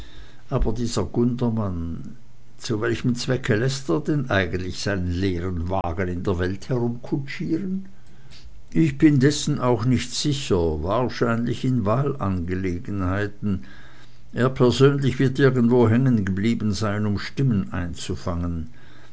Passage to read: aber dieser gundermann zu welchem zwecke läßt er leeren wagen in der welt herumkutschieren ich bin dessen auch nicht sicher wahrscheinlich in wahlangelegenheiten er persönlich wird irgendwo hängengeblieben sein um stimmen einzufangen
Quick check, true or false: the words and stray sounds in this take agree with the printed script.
false